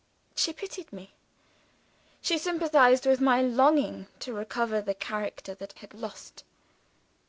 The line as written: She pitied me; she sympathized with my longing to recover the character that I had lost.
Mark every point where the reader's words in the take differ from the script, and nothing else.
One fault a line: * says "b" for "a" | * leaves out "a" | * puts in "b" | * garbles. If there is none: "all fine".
* leaves out "I"